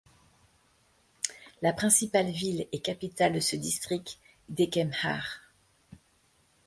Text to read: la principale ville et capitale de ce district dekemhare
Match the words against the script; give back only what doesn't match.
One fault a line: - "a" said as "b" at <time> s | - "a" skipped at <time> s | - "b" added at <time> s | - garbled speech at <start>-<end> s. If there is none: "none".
none